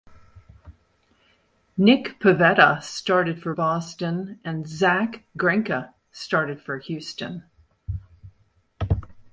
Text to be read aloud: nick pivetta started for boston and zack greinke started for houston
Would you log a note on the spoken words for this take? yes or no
no